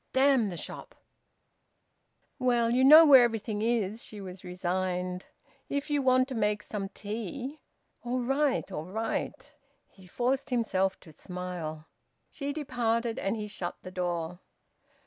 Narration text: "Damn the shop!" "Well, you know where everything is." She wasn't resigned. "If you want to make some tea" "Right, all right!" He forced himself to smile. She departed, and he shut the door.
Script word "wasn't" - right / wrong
wrong